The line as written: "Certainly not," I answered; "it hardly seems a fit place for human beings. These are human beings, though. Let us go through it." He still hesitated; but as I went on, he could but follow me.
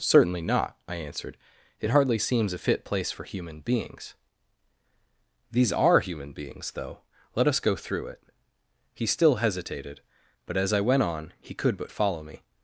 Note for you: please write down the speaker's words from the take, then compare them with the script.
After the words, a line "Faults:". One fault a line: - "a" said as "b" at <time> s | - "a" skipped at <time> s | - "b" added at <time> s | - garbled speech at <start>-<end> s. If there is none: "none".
"Certainly not," I answered; "it hardly seems a fit place for human beings. These are human beings, though. Let us go through it." He still hesitated; but as I went on, he could but follow me.
Faults:
none